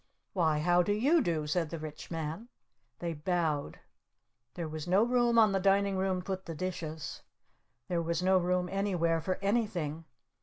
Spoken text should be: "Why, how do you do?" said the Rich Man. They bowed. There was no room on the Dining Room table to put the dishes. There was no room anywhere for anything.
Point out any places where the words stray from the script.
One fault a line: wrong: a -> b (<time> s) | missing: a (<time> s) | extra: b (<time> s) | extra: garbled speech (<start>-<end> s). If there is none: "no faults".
missing: table to (6.2 s)